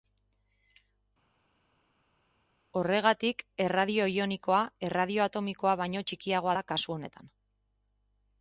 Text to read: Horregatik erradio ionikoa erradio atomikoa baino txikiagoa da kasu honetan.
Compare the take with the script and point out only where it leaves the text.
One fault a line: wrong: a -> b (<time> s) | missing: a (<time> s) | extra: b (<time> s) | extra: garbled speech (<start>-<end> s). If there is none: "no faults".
no faults